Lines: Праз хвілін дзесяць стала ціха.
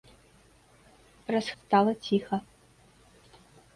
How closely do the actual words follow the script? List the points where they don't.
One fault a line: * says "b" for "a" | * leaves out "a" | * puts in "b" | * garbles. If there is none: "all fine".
* leaves out "хвілін дзесяць"